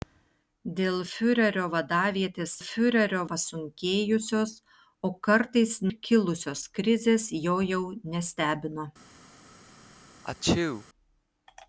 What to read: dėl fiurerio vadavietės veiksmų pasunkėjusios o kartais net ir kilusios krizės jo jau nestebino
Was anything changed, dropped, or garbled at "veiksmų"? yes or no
yes